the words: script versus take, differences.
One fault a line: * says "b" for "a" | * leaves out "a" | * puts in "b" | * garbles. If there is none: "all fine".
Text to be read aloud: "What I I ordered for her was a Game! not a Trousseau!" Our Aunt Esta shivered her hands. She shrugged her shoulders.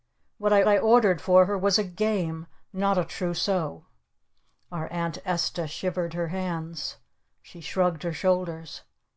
all fine